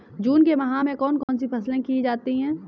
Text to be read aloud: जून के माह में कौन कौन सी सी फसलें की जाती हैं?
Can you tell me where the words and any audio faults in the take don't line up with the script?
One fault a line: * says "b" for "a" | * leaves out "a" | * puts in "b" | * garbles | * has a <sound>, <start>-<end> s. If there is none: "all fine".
* has a dropout, 1.2-1.3 s
* leaves out "सी"